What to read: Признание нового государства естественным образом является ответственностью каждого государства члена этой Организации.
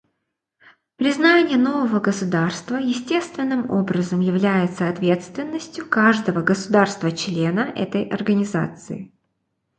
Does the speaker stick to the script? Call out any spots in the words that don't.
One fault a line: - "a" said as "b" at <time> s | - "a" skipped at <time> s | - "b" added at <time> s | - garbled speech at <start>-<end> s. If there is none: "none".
none